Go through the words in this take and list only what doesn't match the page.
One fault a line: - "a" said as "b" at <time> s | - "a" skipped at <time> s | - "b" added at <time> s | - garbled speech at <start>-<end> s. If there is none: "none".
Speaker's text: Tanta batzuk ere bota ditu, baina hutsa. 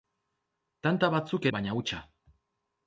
- "ere bota ditu" skipped at 1.5 s